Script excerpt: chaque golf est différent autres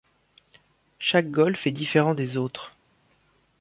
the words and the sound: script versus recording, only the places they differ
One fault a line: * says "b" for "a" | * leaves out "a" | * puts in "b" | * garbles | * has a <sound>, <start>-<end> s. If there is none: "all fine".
* puts in "des"